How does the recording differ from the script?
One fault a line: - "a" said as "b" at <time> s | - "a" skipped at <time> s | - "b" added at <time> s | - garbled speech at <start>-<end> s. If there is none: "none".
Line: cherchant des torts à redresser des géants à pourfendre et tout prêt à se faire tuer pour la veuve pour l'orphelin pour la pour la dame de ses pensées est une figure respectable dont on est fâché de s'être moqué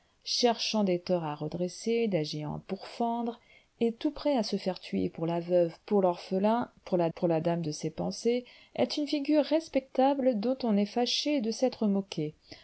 none